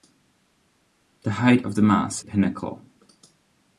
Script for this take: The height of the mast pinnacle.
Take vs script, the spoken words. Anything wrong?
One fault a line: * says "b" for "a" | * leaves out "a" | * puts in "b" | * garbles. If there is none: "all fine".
all fine